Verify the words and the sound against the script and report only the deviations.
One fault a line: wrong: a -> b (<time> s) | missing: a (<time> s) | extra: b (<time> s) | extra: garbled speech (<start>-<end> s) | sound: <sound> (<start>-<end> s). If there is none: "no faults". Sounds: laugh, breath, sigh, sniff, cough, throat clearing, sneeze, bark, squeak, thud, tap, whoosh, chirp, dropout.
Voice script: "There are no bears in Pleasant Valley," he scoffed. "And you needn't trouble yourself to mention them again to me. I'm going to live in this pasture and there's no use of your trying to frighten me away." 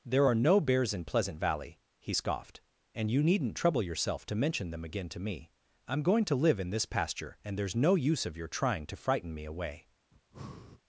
sound: breath (10.1-10.8 s)